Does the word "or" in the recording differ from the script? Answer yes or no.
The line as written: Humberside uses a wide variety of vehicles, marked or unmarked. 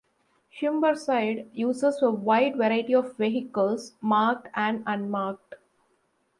yes